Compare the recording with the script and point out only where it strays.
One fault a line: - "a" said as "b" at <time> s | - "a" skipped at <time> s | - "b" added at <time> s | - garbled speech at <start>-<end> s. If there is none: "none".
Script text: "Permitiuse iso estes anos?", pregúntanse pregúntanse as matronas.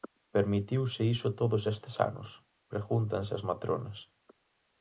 - "todos" added at 1.4 s
- "pregúntanse" skipped at 3.3 s